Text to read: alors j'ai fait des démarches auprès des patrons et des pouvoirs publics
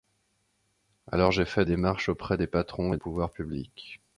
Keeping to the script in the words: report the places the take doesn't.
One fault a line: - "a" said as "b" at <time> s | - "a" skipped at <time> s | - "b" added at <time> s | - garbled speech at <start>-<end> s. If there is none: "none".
- "des" skipped at 1.6 s
- "des" skipped at 3.0 s